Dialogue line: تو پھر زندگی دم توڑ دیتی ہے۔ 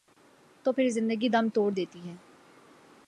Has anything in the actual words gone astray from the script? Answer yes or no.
no